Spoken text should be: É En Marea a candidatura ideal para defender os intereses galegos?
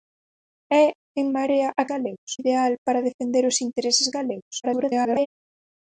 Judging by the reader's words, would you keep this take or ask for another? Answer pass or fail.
fail